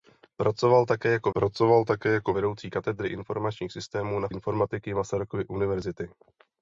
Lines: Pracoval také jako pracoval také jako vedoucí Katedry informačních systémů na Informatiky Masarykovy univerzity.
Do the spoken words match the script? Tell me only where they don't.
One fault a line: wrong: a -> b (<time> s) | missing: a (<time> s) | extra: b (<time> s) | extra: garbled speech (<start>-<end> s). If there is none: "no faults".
no faults